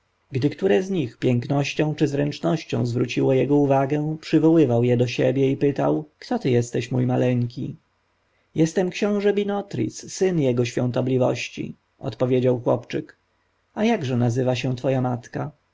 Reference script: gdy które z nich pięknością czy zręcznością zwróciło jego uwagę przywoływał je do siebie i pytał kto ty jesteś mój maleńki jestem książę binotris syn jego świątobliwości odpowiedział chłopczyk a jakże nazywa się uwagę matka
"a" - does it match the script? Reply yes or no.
yes